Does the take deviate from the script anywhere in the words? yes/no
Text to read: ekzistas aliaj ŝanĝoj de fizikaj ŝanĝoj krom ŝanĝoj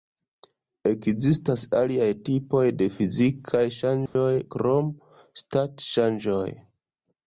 yes